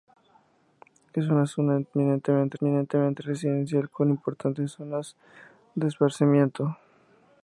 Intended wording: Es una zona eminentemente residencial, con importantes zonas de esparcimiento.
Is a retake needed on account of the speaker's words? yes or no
yes